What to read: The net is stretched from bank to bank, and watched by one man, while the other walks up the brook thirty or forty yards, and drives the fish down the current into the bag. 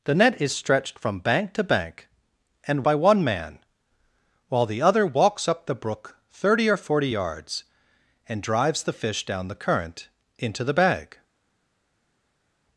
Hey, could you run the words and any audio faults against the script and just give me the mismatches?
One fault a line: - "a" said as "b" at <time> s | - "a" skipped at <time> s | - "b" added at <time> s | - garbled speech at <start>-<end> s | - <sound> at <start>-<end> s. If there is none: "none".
- "watched" skipped at 2.8 s